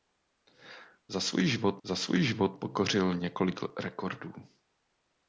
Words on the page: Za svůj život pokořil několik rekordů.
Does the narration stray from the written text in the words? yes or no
yes